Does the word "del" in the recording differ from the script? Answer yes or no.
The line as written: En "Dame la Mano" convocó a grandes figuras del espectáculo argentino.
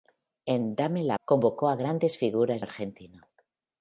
yes